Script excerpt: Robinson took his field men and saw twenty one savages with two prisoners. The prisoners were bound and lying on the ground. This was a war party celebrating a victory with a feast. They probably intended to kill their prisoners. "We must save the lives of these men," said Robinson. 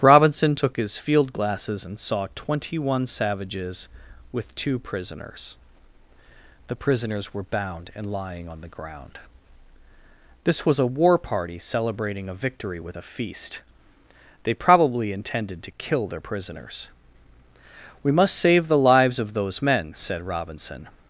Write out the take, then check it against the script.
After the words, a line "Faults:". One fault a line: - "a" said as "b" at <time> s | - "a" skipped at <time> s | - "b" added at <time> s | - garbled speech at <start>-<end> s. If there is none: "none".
Robinson took his field glasses and saw twenty one savages with two prisoners. The prisoners were bound and lying on the ground. This was a war party celebrating a victory with a feast. They probably intended to kill their prisoners. "We must save the lives of those men," said Robinson.
Faults:
- "men" said as "glasses" at 1.3 s
- "these" said as "those" at 19.3 s